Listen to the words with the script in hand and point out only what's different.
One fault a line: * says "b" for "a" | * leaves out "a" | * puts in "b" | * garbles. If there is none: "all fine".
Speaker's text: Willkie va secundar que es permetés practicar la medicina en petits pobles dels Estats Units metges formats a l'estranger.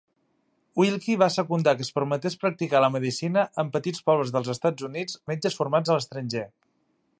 all fine